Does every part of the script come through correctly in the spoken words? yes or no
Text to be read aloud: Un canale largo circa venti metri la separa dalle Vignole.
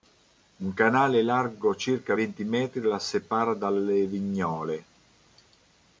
yes